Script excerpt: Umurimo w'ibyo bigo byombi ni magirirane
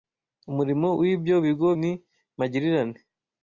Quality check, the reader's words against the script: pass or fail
fail